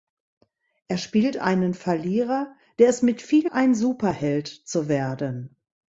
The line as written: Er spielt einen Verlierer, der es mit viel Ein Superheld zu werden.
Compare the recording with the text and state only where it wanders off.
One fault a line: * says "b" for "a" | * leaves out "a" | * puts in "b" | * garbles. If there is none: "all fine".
all fine